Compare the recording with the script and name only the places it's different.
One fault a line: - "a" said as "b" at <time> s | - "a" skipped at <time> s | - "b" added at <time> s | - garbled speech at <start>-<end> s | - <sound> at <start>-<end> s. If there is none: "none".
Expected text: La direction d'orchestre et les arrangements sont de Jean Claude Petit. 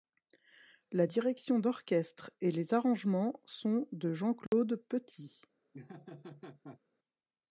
- dropout at 4.5-4.5 s
- laugh at 5.7-6.8 s